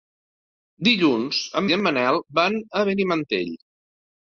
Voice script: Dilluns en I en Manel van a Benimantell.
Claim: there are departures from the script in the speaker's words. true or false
false